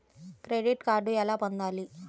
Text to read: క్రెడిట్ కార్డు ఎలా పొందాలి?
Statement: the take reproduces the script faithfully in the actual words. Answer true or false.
true